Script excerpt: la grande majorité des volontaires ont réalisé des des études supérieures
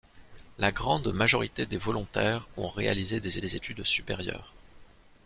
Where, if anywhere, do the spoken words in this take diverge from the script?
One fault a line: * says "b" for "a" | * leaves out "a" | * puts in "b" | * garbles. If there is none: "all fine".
all fine